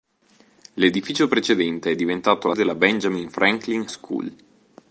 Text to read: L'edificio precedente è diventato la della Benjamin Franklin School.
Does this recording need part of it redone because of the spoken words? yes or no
no